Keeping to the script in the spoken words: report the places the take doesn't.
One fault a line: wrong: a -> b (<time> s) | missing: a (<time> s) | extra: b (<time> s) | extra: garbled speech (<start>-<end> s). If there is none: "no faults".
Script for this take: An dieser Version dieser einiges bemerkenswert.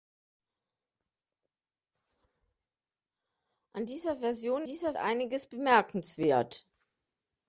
no faults